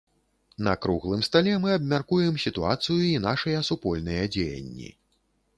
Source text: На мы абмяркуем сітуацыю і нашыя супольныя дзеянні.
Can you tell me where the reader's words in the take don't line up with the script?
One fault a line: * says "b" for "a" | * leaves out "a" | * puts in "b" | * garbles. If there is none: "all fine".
* puts in "круглым стале"